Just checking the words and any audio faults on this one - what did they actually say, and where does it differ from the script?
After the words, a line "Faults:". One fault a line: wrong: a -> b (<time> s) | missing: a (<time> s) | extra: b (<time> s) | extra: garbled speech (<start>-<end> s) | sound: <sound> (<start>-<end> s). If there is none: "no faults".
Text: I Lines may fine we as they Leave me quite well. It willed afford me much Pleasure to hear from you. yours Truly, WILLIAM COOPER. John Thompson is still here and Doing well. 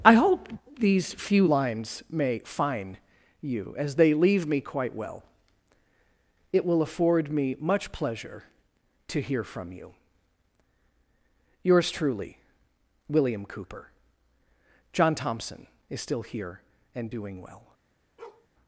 I hope these few Lines may fine you as they Leave me quite well. It will afford me much Pleasure to hear from you. yours Truly, WILLIAM COOPER. John Thompson is still here and Doing well.
Faults:
extra: hope these few (0.1 s)
wrong: we -> you (3.4 s)
wrong: willed -> will (6.6 s)
sound: bark (18.2-18.5 s)